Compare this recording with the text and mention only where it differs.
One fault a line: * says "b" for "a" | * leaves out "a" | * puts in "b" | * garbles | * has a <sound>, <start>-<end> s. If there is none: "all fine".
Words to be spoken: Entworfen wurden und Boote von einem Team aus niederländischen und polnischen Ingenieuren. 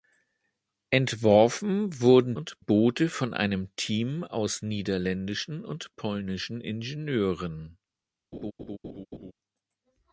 * has a laugh, 8.3-9.3 s